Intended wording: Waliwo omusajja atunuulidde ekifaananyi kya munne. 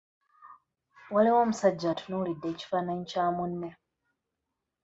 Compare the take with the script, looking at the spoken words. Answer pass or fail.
pass